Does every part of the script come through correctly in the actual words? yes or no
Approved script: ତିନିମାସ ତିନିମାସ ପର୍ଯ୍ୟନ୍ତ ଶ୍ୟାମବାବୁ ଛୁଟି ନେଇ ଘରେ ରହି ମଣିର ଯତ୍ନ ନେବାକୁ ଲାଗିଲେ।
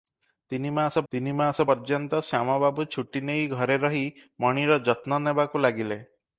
yes